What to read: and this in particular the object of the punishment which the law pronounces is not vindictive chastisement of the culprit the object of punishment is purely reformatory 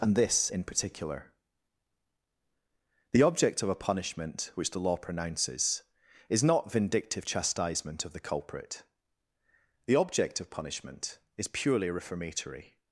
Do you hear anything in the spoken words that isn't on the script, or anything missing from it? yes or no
yes